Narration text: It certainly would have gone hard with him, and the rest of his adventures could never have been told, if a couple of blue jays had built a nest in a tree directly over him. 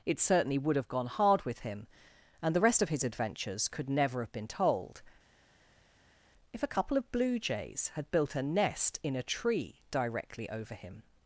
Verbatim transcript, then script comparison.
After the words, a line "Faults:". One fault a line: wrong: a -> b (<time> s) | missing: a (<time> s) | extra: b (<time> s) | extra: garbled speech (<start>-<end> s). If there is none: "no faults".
It certainly would have gone hard with him, and the rest of his adventures could never have been told, if a couple of blue jays had built a nest in a tree directly over him.
Faults:
no faults